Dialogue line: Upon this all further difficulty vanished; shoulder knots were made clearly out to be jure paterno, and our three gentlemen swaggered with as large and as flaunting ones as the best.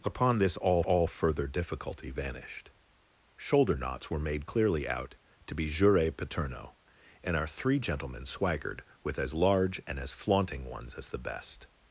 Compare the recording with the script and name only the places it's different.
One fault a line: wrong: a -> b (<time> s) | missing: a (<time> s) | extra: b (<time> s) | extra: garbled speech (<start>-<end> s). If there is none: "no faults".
extra: all (0.8 s)